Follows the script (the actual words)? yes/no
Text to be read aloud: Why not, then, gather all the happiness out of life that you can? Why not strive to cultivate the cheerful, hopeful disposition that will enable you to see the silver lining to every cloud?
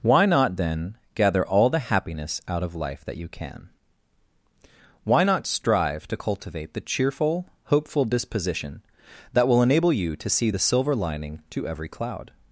yes